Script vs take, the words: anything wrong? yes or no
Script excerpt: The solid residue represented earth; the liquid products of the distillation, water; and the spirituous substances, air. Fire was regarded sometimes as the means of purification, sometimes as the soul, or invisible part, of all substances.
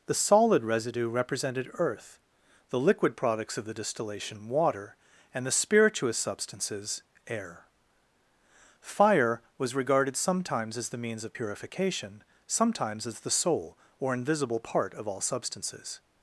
no